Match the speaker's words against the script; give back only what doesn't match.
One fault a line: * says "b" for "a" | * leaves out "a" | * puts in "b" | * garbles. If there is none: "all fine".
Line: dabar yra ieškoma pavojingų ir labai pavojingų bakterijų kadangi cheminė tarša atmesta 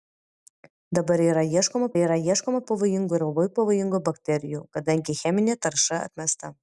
* puts in "yra ieškoma"